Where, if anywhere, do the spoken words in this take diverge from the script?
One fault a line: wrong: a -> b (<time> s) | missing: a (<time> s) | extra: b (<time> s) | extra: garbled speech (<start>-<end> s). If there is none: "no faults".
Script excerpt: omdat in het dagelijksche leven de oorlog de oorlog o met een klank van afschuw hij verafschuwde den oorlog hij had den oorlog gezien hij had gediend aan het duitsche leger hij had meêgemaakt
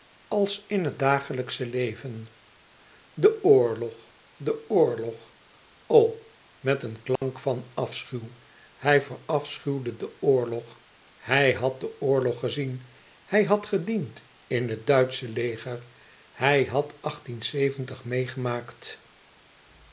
wrong: omdat -> als (0.3 s)
wrong: aan -> in (14.5 s)